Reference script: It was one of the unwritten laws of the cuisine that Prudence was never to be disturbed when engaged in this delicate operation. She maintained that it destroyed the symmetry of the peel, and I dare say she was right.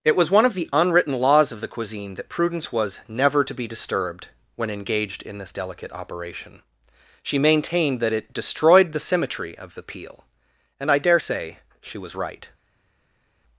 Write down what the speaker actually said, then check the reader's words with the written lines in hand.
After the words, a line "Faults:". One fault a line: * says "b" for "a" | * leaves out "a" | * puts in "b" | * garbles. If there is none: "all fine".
It was one of the unwritten laws of the cuisine that Prudence was never to be disturbed when engaged in this delicate operation. She maintained that it destroyed the symmetry of the peel, and I dare say she was right.
Faults:
all fine